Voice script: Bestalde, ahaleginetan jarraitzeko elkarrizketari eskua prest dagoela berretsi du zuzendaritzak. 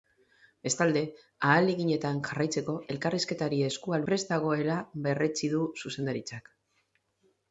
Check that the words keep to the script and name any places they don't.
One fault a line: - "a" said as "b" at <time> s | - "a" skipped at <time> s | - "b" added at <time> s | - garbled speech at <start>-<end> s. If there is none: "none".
none